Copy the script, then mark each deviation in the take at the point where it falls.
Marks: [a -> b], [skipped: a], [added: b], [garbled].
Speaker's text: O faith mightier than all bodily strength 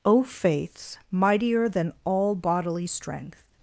O [faith -> faiths] mightier than all bodily strength